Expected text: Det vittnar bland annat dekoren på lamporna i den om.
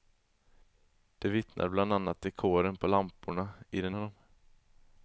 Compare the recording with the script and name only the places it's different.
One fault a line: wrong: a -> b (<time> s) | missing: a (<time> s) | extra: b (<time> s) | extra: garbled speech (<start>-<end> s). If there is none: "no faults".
no faults